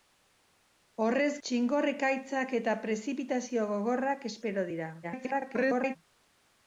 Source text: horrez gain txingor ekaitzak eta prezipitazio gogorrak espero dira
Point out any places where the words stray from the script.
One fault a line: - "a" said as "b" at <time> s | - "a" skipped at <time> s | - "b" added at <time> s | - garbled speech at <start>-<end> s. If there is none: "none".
- "gain" skipped at 1.3 s
- garbled speech at 5.0-6.0 s